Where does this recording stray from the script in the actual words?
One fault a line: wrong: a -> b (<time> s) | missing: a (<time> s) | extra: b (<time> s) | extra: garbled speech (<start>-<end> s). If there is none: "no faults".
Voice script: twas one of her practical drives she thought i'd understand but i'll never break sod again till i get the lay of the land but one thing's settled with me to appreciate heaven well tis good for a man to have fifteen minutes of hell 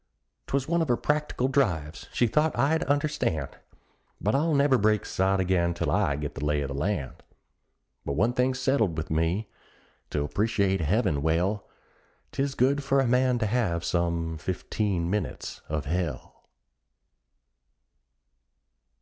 extra: some (13.8 s)